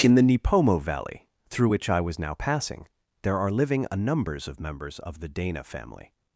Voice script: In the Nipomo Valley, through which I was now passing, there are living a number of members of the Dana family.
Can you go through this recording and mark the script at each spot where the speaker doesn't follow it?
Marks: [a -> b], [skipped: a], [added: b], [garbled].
In the Nipomo Valley, through which I was now passing, there are living a [number -> numbers] of members of the Dana family.